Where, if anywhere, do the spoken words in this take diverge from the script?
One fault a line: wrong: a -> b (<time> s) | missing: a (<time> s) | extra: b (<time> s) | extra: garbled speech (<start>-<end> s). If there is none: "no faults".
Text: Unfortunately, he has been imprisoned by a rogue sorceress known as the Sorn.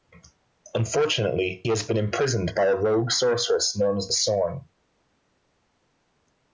missing: he (1.6 s)
missing: the (4.1 s)